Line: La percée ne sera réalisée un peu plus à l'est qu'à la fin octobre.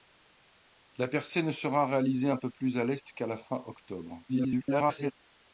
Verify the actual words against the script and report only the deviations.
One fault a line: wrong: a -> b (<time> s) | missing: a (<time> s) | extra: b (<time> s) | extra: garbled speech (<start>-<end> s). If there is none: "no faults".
extra: garbled speech (4.3-5.1 s)